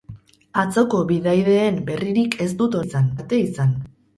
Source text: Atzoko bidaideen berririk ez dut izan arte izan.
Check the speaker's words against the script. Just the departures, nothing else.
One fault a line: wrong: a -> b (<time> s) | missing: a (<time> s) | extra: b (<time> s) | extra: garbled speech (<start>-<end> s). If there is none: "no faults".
no faults